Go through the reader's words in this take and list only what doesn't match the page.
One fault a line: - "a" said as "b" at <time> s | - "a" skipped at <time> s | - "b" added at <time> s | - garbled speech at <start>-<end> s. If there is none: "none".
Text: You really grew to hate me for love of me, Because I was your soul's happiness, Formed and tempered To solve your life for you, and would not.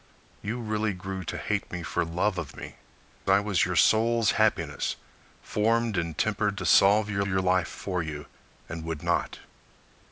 - "Because" skipped at 2.8 s
- "your" added at 7.3 s